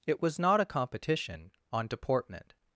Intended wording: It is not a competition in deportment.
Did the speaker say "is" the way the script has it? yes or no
no